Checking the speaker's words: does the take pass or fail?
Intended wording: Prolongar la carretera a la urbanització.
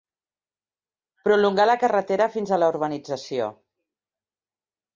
fail